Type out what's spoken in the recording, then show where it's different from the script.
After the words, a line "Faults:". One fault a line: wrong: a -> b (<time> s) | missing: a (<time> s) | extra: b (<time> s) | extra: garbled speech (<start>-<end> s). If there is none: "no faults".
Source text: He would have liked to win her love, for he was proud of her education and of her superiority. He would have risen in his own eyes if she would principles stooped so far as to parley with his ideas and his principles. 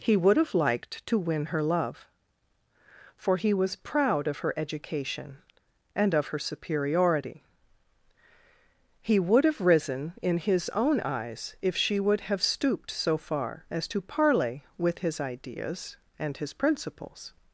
He would have liked to win her love, for he was proud of her education and of her superiority. He would have risen in his own eyes if she would have stooped so far as to parley with his ideas and his principles.
Faults:
wrong: principles -> have (12.2 s)